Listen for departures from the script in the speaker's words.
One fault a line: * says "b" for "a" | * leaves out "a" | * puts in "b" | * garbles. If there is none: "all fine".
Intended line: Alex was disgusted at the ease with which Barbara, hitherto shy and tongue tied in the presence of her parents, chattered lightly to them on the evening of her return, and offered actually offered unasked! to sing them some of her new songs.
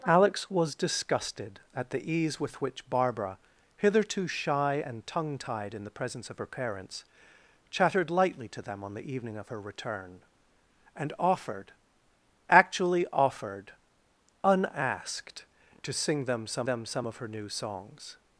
* puts in "them some"